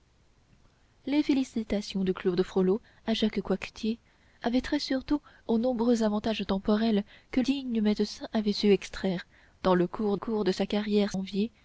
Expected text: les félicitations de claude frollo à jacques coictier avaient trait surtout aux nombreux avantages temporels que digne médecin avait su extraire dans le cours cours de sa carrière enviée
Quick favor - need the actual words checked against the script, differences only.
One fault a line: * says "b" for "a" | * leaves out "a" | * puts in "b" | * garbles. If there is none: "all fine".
all fine